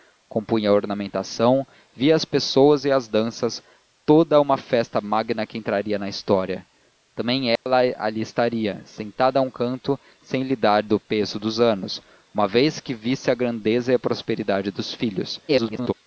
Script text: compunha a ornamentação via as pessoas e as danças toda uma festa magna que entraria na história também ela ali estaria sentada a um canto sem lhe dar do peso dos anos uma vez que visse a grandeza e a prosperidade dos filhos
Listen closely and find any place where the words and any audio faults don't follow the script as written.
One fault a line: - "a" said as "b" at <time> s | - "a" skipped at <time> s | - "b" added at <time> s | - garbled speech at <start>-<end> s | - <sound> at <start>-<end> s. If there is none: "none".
- dropout at 7.6-7.7 s
- garbled speech at 15.5-15.9 s